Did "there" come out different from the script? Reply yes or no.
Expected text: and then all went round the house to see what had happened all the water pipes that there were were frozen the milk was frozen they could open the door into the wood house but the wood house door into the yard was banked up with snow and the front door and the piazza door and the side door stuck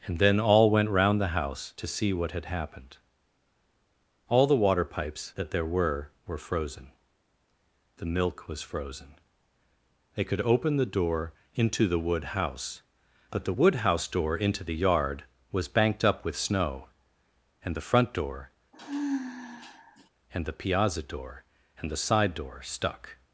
no